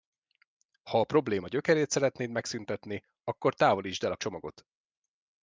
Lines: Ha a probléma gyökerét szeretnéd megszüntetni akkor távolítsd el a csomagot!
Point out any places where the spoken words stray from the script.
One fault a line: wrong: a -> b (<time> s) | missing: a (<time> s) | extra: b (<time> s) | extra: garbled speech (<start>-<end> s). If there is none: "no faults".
no faults